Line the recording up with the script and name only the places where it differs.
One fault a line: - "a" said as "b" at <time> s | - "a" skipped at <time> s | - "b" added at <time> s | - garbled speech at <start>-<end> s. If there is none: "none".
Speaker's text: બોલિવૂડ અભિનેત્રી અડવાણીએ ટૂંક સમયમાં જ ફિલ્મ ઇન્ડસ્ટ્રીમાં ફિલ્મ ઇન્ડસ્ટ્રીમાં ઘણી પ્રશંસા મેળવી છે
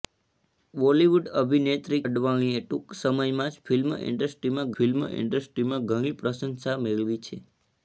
none